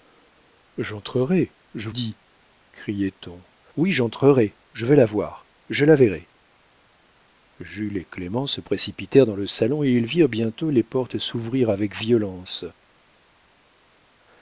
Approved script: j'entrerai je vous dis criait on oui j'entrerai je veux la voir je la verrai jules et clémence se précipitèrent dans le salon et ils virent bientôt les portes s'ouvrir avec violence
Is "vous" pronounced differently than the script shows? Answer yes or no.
yes